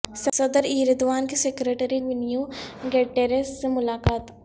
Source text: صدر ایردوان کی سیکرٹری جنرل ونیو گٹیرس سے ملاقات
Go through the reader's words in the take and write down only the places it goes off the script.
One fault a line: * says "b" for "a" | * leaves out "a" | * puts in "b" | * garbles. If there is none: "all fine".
* leaves out "جنرل"